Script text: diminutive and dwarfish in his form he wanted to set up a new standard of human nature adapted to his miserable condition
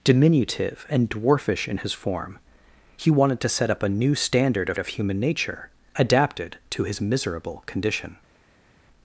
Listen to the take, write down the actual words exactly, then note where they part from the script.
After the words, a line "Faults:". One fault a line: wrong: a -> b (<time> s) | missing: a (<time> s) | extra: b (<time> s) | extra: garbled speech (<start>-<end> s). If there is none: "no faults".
diminutive and dwarfish in his form he wanted to set up a new standard of of human nature adapted to his miserable condition
Faults:
extra: of (4.8 s)